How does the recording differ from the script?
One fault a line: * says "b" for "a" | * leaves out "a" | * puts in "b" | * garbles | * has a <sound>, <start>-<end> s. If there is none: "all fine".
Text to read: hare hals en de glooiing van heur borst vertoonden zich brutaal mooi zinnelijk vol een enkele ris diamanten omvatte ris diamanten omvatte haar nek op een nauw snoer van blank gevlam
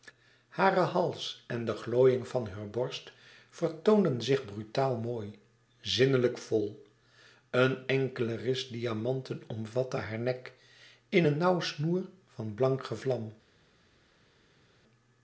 * leaves out "ris diamanten omvatte"
* says "in" for "op"